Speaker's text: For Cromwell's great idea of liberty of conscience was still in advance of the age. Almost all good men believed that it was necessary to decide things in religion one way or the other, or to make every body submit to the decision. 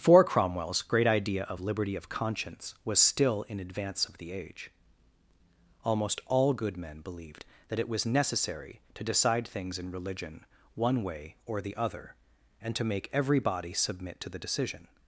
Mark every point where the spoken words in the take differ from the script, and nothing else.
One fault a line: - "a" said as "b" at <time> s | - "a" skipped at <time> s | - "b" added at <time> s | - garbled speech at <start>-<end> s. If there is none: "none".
- "or" said as "and" at 12.6 s